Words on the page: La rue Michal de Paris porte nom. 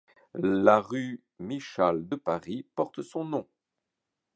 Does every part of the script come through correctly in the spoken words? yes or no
no